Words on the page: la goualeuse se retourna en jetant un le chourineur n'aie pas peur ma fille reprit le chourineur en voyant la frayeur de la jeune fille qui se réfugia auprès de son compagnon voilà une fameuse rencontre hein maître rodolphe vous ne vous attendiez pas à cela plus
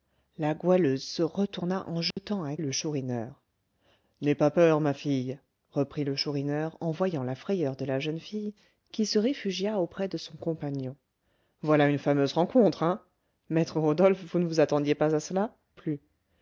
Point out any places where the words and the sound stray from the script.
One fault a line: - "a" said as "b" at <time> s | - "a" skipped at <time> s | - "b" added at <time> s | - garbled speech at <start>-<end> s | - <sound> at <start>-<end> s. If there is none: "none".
- dropout at 2.1-2.2 s